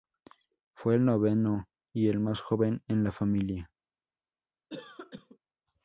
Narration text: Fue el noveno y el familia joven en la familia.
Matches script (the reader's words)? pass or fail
fail